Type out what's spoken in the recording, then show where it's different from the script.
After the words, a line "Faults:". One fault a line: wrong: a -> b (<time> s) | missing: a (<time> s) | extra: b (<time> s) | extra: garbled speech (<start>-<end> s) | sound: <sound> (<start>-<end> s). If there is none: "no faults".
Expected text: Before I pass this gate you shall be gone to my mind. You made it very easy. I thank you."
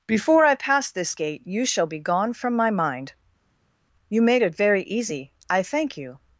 Before I pass this gate you shall be gone from my mind. You made it very easy. I thank you."
Faults:
wrong: to -> from (2.3 s)